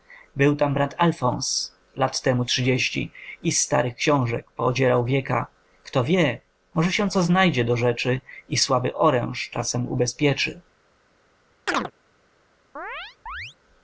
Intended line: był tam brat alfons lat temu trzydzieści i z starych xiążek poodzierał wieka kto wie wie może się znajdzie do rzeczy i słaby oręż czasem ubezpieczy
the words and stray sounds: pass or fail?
fail